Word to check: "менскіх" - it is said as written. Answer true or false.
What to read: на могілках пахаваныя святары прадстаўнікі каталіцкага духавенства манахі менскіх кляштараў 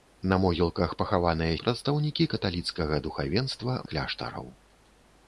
false